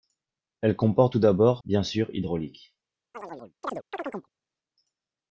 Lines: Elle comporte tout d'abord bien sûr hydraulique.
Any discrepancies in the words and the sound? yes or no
yes